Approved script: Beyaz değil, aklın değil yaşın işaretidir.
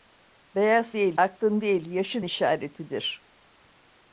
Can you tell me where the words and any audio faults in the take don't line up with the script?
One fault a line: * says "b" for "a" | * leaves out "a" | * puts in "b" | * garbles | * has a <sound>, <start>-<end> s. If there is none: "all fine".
all fine